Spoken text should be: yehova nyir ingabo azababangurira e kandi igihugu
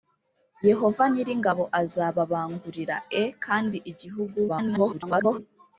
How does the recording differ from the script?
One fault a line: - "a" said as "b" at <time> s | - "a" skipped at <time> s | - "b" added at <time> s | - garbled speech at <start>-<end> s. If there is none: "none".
- garbled speech at 4.5-5.4 s